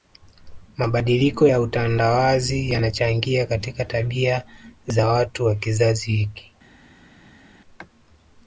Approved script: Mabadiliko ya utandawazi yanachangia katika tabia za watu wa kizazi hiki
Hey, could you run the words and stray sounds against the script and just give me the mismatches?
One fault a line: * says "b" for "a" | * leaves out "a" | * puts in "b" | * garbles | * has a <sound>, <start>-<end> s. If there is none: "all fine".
all fine